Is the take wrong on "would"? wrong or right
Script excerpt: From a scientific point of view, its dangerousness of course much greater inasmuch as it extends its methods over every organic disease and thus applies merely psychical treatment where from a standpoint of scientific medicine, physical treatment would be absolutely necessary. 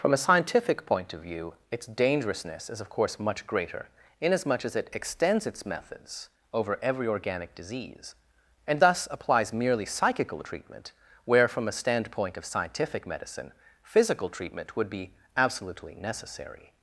right